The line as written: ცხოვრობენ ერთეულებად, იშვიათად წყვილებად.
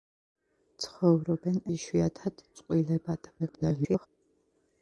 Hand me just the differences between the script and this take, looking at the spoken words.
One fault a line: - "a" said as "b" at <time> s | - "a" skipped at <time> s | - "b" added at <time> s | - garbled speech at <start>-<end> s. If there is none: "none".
- "ერთეულებად" skipped at 1.6 s
- garbled speech at 3.4-4.1 s